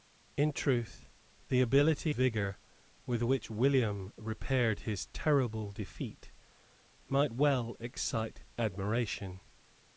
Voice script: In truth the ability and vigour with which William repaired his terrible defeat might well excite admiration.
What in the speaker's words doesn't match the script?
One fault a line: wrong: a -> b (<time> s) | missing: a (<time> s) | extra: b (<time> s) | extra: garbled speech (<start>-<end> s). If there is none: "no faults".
missing: and (2.1 s)